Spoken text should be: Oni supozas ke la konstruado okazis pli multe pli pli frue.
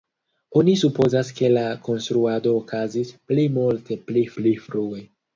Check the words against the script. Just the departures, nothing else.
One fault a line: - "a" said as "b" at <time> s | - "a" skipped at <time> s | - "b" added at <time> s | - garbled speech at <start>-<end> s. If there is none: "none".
none